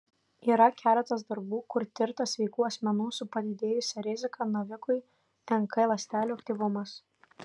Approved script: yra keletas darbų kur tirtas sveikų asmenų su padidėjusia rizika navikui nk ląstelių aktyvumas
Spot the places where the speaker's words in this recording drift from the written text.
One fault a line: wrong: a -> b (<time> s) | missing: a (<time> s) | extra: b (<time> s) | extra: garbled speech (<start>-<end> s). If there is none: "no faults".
no faults